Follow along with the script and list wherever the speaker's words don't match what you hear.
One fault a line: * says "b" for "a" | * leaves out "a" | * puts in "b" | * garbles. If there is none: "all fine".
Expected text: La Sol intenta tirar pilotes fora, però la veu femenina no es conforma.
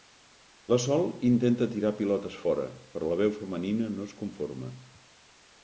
all fine